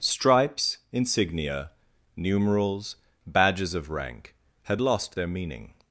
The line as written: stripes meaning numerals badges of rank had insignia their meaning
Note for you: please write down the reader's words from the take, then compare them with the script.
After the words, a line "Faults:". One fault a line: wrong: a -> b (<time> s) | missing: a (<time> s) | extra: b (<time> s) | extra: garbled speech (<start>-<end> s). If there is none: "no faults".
stripes insignia numerals badges of rank had lost their meaning
Faults:
wrong: meaning -> insignia (0.9 s)
wrong: insignia -> lost (4.8 s)